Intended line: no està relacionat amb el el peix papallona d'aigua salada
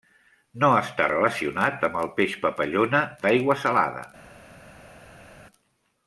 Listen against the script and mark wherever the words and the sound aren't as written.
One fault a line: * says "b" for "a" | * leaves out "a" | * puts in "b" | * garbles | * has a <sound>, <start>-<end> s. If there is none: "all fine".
* leaves out "el"